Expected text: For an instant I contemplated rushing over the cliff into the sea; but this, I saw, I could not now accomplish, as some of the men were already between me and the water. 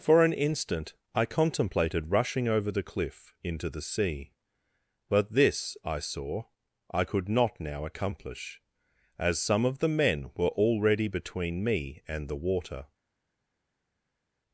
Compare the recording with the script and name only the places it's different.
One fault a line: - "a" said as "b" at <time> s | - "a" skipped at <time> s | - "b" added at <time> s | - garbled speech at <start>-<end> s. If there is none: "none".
none